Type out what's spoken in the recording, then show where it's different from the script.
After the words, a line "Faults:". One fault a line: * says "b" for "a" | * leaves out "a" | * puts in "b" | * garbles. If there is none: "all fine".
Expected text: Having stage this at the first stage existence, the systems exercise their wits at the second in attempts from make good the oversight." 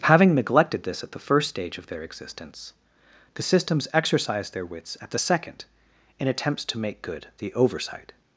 Having neglected this at the first stage of their existence, the systems exercise their wits at the second in attempts to make good the oversight."
Faults:
* says "neglected" for "stage"
* puts in "of their"
* says "to" for "from"